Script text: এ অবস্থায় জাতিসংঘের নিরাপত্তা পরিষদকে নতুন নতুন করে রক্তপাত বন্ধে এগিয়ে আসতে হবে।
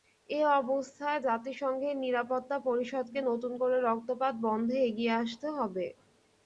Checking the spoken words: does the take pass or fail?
fail